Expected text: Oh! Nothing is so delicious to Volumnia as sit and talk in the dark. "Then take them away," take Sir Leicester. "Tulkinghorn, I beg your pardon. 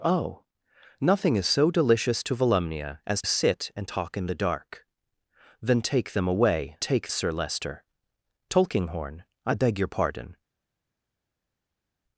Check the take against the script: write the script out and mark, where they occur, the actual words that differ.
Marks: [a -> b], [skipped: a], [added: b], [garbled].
Oh! Nothing is so delicious to Volumnia as sit and talk in the dark. "Then take them away," take Sir Leicester. "Tulkinghorn, I beg your pardon.